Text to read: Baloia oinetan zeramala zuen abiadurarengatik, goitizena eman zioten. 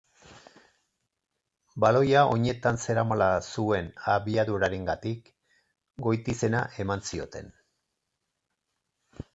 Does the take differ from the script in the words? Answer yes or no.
no